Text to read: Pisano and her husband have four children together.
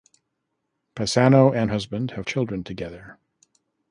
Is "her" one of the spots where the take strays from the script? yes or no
yes